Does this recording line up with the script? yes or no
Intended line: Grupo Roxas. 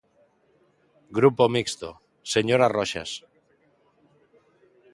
no